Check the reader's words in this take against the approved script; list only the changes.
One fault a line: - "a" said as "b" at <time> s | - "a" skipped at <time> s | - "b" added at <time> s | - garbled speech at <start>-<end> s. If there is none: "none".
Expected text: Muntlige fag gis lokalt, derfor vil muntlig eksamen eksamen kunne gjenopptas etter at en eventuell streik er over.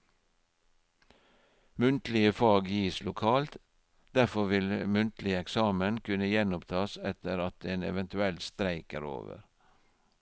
- "eksamen" skipped at 6.0 s